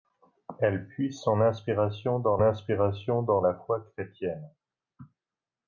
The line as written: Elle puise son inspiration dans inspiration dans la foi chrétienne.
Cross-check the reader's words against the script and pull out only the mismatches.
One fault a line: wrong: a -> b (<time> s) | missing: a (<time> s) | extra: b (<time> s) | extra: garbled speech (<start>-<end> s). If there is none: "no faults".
no faults